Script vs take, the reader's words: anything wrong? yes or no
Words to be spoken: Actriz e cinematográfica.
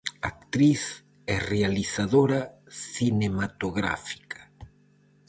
yes